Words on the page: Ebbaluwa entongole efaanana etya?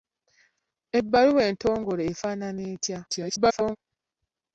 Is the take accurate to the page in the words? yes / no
no